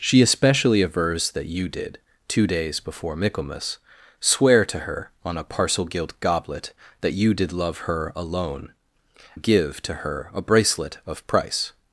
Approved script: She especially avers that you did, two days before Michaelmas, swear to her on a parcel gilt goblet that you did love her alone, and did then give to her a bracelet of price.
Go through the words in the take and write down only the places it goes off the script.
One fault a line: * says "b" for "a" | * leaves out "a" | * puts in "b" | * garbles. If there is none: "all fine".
* leaves out "and did then"